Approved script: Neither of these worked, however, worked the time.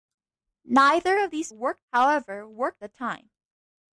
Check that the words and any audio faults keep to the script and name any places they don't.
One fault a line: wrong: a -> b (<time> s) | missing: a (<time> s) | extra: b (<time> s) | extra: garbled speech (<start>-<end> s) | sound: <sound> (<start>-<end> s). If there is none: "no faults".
no faults